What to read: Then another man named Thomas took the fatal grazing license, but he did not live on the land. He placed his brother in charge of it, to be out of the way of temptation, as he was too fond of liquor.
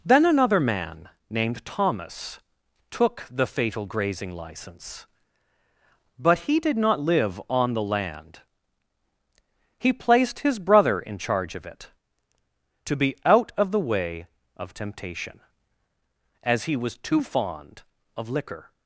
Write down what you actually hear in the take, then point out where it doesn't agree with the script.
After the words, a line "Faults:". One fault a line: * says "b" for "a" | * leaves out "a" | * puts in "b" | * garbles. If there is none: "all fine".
Then another man named Thomas took the fatal grazing license, but he did not live on the land. He placed his brother in charge of it, to be out of the way of temptation, as he was too fond of liquor.
Faults:
all fine